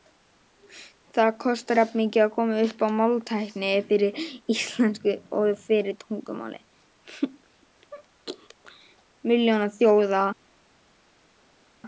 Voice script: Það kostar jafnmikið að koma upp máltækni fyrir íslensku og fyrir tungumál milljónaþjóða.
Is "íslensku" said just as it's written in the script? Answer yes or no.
yes